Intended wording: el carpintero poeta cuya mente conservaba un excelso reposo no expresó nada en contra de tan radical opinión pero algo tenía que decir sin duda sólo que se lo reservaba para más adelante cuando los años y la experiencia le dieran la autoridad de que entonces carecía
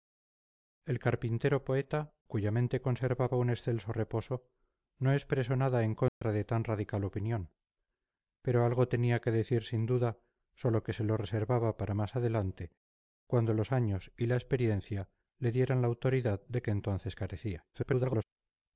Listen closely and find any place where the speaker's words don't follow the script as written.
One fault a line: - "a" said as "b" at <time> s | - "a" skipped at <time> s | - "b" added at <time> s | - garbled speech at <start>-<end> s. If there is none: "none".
- garbled speech at 17.7-18.2 s